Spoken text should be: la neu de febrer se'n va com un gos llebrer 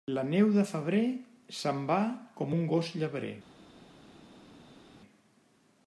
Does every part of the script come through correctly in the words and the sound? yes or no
yes